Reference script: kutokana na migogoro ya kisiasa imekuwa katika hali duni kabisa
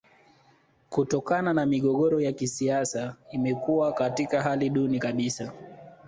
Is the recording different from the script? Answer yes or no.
no